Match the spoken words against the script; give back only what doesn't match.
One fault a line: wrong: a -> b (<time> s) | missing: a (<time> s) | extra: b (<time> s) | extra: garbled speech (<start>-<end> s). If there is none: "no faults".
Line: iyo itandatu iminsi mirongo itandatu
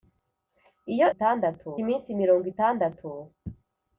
no faults